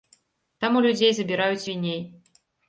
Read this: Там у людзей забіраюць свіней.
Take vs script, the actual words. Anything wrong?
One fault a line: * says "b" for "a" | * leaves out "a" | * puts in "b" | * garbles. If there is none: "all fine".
all fine